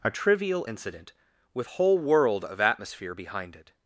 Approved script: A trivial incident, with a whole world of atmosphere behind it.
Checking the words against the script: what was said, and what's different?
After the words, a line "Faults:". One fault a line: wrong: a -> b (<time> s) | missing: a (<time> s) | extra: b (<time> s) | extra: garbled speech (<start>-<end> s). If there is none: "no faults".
A trivial incident, with whole world of atmosphere behind it.
Faults:
missing: a (1.7 s)